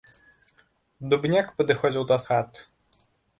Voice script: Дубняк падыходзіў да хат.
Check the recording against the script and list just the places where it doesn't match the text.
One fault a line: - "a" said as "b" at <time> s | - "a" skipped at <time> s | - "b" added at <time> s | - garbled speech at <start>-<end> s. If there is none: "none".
none